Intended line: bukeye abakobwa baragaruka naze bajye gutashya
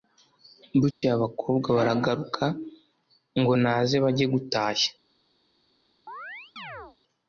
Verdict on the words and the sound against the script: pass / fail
fail